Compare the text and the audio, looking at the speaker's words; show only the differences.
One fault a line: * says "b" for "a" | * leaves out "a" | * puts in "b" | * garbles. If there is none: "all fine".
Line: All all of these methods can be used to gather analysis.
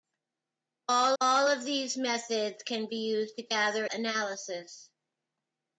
all fine